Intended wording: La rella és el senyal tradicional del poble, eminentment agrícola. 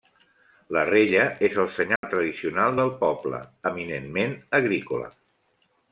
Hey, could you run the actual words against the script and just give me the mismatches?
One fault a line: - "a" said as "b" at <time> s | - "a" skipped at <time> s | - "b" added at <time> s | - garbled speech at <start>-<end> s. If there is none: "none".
none